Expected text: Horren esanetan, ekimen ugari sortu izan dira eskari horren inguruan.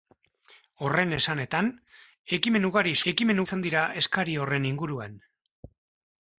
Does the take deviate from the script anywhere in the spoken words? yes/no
yes